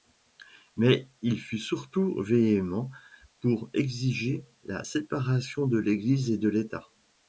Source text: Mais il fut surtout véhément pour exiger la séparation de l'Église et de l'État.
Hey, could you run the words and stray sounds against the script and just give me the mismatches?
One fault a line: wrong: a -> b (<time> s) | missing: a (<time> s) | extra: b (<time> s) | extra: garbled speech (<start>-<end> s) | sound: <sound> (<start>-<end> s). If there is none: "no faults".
no faults